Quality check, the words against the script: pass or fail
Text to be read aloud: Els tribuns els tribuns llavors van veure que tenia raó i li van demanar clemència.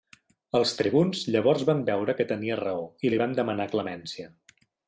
fail